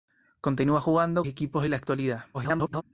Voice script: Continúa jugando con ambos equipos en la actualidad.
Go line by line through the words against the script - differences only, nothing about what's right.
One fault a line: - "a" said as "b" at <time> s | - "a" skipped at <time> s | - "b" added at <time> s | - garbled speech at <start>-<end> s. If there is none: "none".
- "con ambos" skipped at 1.2 s
- garbled speech at 2.3-2.8 s